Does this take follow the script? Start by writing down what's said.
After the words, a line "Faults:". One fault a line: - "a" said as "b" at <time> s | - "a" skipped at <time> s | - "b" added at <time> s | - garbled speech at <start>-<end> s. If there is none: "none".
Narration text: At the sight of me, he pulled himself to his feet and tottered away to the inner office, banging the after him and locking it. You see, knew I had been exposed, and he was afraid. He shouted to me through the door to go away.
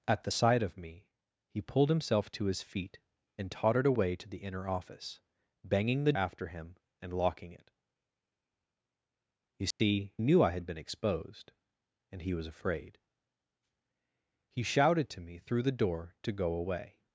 At the sight of me, he pulled himself to his feet and tottered away to the inner office, banging the after him and locking it. You see, knew I had been exposed, and he was afraid. He shouted to me through the door to go away.
Faults:
none